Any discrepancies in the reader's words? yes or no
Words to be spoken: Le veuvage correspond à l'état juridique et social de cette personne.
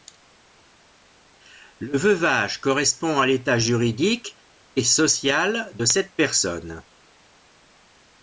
no